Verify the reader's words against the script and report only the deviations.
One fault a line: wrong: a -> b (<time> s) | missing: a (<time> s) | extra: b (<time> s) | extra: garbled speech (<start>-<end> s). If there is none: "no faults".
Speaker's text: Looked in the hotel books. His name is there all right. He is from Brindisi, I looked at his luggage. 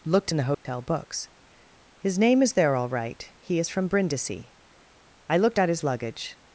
no faults